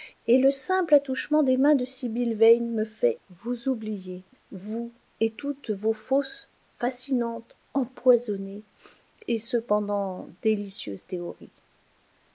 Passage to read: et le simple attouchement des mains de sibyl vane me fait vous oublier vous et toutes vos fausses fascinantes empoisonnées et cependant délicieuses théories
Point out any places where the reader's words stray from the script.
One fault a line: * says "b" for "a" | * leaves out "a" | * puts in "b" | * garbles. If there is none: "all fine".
all fine